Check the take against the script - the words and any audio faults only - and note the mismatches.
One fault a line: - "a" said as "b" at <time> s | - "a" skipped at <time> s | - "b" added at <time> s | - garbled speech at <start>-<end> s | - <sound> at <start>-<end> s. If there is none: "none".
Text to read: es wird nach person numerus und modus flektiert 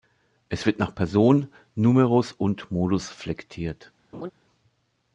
- laugh at 4.1-4.3 s